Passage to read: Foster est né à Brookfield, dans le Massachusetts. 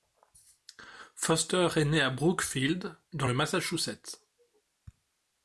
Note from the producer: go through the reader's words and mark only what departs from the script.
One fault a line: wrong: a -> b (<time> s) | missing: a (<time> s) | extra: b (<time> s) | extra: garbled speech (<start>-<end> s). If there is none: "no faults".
no faults